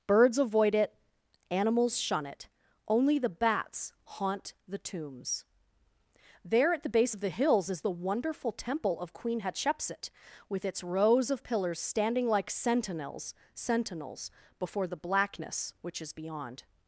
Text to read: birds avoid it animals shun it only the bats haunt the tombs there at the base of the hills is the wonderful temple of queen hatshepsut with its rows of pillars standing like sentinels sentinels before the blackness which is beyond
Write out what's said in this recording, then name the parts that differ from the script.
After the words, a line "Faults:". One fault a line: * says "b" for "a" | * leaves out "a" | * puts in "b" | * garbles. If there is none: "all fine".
birds avoid it animals shun it only the bats haunt the tombs there at the base of the hills is the wonderful temple of queen hatshepsut with its rows of pillars standing like sentinels sentinels before the blackness which is beyond
Faults:
all fine